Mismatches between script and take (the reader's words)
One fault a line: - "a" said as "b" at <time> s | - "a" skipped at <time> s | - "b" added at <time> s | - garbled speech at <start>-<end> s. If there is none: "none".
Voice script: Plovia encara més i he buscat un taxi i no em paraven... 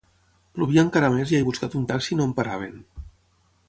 none